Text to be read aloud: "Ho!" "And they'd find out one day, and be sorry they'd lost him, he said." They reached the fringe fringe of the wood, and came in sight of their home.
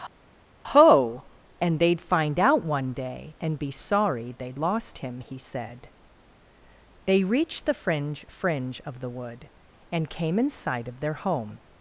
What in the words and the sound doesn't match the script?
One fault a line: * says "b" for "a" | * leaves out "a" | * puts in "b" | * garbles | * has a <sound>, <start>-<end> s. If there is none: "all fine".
all fine